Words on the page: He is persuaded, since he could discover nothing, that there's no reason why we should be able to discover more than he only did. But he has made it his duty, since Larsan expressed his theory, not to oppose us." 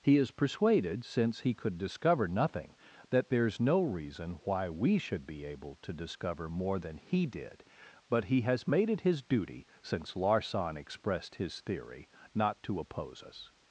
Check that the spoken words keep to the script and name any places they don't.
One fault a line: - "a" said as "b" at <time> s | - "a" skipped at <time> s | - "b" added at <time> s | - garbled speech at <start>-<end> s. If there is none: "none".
- "only" skipped at 7.2 s